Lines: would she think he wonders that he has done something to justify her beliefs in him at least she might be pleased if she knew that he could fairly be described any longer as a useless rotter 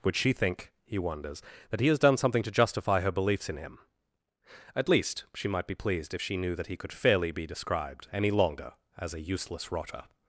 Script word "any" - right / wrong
right